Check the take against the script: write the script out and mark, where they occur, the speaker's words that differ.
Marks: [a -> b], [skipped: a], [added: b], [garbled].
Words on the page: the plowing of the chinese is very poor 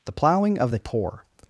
the plowing of the [skipped: chinese is very] poor